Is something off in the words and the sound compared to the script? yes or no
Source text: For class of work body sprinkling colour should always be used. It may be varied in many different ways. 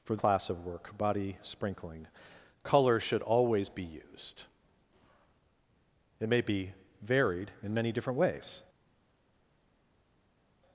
no